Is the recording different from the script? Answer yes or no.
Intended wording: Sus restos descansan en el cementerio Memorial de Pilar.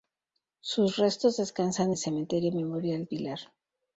yes